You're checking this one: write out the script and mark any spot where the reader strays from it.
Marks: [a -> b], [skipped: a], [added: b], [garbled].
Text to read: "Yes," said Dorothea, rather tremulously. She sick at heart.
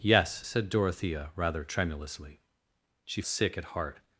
"Yes," said Dorothea, rather tremulously. She sick at heart.